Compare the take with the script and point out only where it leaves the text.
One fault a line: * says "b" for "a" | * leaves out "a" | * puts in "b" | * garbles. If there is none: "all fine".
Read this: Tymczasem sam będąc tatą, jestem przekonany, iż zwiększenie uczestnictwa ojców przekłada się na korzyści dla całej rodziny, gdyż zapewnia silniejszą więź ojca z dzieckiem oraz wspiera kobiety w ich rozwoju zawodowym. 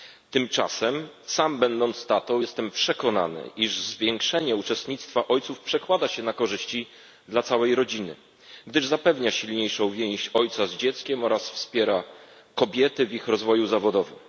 all fine